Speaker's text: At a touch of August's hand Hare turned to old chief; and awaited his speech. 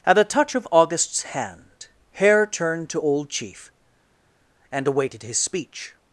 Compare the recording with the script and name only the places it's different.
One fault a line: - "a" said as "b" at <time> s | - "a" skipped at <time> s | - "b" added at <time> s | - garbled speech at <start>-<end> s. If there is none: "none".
none